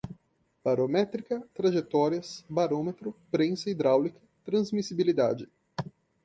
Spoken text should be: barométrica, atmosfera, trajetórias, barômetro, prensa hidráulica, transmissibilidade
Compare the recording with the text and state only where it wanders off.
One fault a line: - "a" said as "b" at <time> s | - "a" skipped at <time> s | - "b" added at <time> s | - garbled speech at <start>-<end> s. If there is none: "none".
- "atmosfera" skipped at 1.5 s